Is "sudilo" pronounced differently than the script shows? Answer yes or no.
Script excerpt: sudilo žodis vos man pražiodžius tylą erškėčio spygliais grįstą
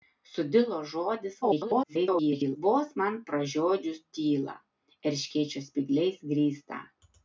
no